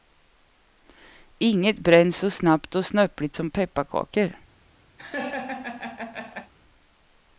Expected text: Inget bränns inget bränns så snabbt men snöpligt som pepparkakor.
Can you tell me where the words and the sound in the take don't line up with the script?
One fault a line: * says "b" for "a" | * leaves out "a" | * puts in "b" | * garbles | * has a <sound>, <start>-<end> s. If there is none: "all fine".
* leaves out "inget bränns"
* says "och" for "men"
* has a laugh, 5.0-6.5 s